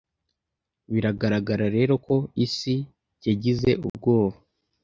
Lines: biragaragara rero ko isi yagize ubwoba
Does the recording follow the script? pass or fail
pass